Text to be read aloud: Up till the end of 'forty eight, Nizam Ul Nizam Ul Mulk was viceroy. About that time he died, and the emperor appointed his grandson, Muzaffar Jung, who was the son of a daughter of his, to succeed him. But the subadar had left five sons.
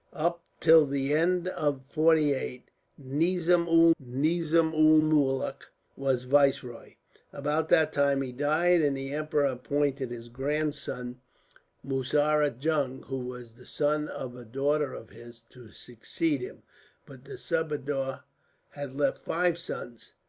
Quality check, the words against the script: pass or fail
pass